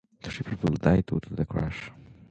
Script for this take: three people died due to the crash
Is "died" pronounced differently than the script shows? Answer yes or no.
no